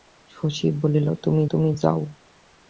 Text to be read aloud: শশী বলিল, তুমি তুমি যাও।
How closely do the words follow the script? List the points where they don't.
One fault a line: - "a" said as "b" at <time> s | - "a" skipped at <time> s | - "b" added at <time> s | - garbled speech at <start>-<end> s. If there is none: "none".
none